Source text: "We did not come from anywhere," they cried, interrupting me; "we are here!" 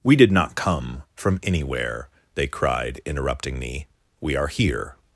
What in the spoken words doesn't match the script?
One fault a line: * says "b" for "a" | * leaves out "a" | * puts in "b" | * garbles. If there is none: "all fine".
all fine